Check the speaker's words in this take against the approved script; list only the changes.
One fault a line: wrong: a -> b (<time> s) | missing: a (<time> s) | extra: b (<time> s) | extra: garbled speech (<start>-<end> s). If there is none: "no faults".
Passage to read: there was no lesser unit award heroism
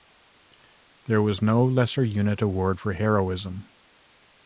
extra: for (2.8 s)